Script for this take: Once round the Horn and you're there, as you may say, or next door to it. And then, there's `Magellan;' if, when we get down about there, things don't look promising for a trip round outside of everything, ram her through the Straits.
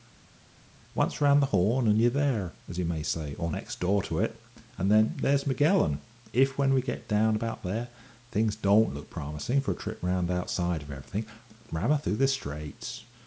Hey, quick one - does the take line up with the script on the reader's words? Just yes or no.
yes